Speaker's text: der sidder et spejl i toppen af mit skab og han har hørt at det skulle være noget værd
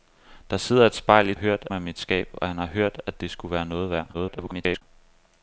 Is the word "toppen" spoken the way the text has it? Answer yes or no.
no